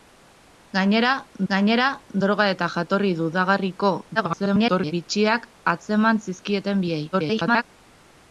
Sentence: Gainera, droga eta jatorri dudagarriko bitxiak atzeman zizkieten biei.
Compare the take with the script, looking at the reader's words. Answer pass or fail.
fail